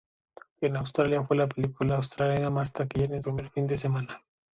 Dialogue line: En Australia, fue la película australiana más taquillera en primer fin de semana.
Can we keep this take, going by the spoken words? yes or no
yes